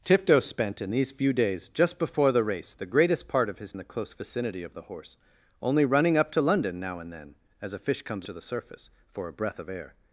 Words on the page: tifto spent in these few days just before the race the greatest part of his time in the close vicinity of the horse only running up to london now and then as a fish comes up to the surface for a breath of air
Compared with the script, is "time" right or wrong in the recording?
wrong